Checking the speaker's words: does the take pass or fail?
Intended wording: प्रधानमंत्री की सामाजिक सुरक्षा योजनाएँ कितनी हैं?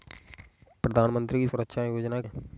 fail